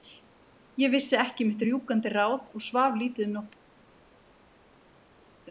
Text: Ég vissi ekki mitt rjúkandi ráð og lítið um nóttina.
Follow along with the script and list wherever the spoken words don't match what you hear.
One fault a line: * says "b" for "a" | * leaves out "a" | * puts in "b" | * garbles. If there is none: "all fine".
* puts in "svaf"